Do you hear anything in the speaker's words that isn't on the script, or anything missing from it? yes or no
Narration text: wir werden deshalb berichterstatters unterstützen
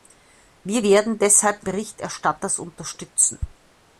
no